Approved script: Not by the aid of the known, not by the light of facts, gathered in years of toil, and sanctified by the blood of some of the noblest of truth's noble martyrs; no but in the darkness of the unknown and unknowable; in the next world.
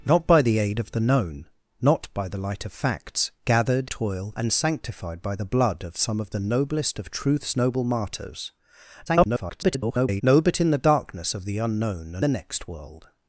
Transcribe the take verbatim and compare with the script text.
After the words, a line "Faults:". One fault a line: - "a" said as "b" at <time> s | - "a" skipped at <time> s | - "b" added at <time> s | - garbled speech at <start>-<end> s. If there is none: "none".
Not by the aid of the known, not by the light of facts, gathered toil, and sanctified by the blood of some of the noblest of truth's noble martyrs; [garbled] no but in the darkness of the unknown and the next world.
Faults:
- "in years of" skipped at 3.9 s
- garbled speech at 9.1-10.2 s
- "unknowable in" skipped at 12.3 s